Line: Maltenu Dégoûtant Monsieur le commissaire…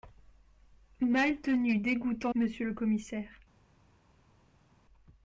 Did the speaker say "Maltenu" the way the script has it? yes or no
yes